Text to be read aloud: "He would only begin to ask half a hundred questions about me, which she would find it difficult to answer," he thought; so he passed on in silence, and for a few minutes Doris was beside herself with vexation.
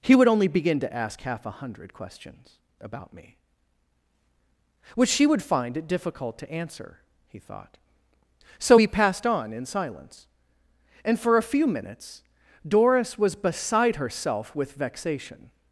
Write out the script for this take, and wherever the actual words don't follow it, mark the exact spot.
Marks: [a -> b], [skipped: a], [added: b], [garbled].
"He would only begin to ask half a hundred questions about me, which she would find it difficult to answer," he thought; so he passed on in silence, and for a few minutes Doris was beside herself with vexation.